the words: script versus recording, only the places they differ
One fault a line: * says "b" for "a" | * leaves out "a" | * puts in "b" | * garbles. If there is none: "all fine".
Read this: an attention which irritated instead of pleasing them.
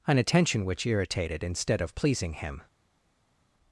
* says "him" for "them"